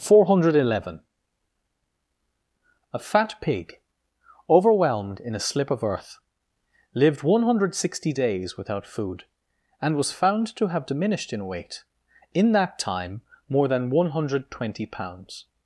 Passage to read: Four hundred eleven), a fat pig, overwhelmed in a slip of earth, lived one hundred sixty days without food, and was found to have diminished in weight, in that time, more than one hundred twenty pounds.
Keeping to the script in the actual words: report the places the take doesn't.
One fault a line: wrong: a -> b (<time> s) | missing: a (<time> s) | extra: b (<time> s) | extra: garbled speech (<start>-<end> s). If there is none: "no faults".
no faults